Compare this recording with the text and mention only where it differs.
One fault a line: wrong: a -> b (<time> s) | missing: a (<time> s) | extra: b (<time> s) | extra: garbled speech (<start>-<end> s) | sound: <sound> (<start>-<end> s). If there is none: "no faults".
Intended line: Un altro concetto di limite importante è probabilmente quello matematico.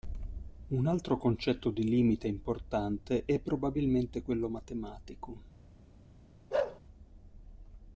sound: bark (6.5-6.8 s)